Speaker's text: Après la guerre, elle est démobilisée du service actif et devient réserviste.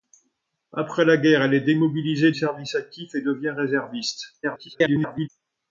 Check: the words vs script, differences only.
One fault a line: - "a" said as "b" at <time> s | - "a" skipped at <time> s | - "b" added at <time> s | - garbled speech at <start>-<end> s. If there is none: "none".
- "du" skipped at 2.3 s
- garbled speech at 4.4-5.3 s